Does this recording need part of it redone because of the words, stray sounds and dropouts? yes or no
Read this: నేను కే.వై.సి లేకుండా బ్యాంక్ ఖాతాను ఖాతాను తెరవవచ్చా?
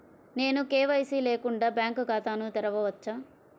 yes